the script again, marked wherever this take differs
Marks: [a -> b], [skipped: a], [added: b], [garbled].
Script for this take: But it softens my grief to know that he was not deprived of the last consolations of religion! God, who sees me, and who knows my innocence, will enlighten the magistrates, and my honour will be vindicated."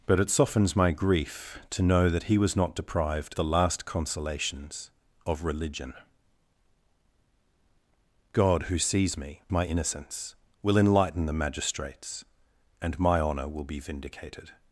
But it softens my grief to know that he was not deprived [skipped: of] the last consolations of religion! God, who sees me, [skipped: and who knows] my innocence, will enlighten the magistrates, and my honour will be vindicated."